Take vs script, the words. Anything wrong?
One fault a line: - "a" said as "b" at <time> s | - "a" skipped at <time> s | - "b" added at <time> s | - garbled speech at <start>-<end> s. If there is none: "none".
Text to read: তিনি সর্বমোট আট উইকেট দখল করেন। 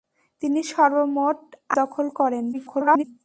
- "আট উইকেট" skipped at 1.4 s
- garbled speech at 2.5-3.0 s